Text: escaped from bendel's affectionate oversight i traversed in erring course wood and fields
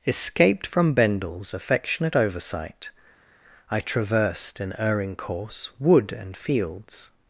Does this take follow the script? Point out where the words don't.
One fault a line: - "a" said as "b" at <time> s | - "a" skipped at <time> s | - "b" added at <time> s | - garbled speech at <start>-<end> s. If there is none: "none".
none